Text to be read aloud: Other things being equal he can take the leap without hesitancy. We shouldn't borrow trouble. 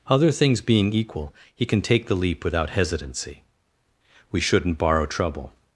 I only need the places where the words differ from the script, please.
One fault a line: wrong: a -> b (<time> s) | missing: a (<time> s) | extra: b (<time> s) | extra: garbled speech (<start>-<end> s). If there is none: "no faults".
no faults